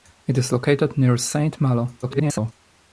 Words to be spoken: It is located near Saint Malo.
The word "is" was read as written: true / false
true